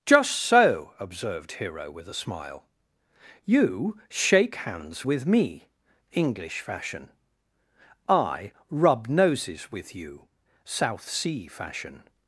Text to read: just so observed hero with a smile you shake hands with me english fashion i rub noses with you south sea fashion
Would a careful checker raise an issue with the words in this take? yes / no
no